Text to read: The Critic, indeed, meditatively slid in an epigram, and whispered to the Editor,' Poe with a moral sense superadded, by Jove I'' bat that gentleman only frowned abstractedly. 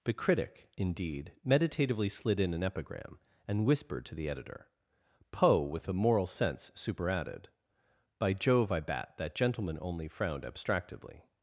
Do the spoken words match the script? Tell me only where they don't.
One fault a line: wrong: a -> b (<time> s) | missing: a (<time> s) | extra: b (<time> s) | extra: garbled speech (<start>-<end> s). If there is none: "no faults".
no faults